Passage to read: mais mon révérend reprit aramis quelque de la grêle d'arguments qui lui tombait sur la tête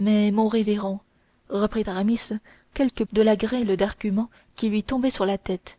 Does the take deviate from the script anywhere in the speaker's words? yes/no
no